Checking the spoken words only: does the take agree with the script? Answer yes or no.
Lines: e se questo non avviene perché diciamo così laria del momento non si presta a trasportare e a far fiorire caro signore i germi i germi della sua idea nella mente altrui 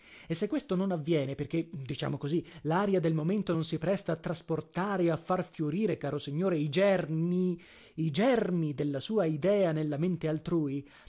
yes